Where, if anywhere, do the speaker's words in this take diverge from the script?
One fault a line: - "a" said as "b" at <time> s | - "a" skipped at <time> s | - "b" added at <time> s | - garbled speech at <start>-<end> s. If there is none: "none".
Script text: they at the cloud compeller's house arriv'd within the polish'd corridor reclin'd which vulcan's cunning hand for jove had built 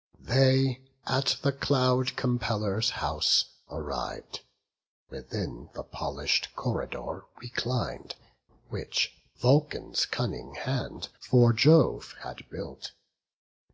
none